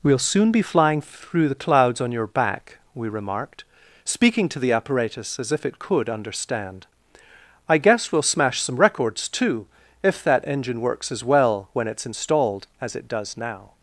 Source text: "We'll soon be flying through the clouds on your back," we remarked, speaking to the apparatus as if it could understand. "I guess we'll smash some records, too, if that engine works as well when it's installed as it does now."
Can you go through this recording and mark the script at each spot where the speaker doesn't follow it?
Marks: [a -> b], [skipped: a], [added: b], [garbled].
"We'll soon be flying through the clouds on your back," we remarked, speaking to the apparatus as if it could understand. "I guess we'll smash some records, too, if that engine works as well when it's installed as it does now."